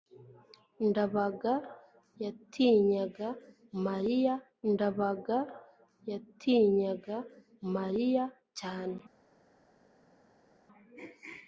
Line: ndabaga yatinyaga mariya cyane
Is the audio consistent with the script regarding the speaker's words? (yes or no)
no